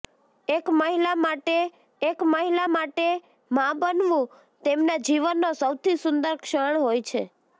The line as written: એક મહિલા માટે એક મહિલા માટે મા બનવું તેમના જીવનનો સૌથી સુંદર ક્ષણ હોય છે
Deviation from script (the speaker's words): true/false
false